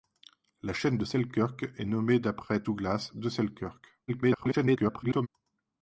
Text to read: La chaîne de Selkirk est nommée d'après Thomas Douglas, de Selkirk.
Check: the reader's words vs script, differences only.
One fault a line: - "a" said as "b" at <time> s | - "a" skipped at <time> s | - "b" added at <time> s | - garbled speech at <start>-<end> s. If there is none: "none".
- "Thomas" skipped at 2.6 s
- garbled speech at 4.1-5.3 s